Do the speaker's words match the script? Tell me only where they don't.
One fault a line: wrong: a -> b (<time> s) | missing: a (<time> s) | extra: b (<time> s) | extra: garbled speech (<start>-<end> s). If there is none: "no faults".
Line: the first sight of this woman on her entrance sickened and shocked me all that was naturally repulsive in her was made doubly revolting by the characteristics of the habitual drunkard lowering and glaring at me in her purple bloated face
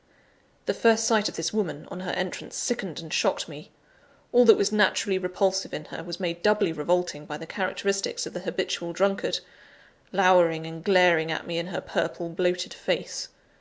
no faults